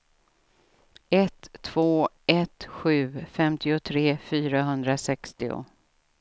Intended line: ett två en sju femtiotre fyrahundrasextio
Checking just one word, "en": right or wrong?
wrong